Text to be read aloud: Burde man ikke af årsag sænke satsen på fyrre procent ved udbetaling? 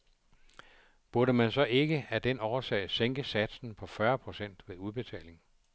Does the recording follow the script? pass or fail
fail